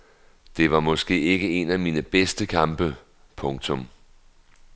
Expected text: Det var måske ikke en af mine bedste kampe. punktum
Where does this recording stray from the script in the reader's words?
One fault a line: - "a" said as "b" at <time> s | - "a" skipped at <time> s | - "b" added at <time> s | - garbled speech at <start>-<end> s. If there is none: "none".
none